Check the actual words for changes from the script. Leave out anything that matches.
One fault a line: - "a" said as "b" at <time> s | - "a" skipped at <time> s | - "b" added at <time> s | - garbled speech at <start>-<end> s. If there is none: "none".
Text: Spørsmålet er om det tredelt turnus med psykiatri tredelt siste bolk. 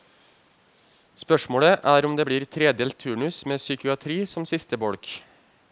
- "blir" added at 2.3 s
- "tredelt" said as "som" at 4.3 s